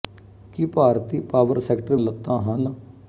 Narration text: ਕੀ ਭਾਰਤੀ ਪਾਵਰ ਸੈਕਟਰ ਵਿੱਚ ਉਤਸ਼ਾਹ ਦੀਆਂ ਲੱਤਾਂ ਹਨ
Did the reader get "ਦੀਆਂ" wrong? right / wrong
wrong